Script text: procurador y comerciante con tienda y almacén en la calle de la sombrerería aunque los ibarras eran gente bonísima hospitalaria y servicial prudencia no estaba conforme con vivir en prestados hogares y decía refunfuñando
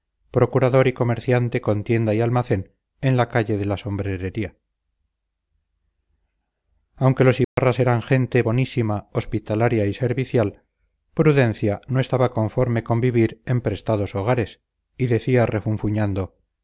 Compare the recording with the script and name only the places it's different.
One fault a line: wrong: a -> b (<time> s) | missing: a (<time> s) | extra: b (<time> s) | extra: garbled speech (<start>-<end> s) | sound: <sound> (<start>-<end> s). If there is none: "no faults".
sound: dropout (7.4-7.6 s)